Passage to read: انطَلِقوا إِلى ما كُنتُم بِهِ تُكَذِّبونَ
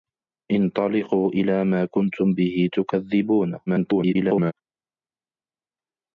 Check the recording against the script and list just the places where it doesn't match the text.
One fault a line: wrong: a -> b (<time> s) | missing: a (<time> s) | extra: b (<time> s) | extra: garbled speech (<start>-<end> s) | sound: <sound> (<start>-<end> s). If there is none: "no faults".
extra: garbled speech (3.7-4.5 s)